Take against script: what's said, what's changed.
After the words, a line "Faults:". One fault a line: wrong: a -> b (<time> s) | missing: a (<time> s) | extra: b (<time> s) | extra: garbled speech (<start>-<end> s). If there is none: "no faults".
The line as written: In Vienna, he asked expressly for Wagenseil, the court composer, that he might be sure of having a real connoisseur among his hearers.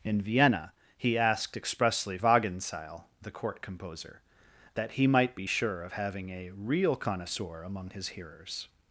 In Vienna, he asked expressly Wagenseil, the court composer, that he might be sure of having a real connoisseur among his hearers.
Faults:
missing: for (2.2 s)